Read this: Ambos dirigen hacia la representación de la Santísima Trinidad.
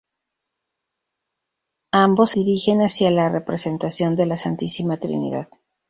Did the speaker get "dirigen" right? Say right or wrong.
right